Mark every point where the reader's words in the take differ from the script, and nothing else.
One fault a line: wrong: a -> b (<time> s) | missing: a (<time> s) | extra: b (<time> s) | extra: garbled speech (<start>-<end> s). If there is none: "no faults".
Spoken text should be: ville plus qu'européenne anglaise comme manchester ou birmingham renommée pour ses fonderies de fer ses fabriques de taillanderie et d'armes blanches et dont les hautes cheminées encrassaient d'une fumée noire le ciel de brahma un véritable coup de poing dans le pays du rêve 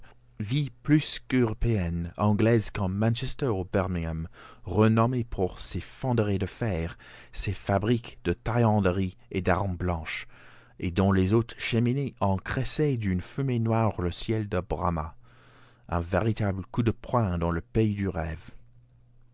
no faults